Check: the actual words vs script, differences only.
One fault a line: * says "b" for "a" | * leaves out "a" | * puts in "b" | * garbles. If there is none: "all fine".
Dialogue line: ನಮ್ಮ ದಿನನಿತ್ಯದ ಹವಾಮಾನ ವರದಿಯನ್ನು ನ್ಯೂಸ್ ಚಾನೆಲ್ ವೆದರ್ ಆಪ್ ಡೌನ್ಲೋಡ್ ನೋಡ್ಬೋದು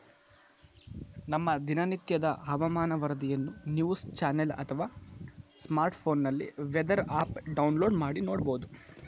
* puts in "ಅಥವಾ ಸ್ಮಾರ್ಟ್ಫೋನ್ನಲ್ಲಿ"
* puts in "ಮಾಡಿ"